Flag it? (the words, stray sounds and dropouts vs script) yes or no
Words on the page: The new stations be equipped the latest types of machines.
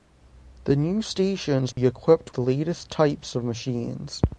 yes